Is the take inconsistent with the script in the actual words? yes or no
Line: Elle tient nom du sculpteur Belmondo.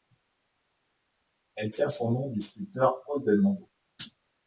yes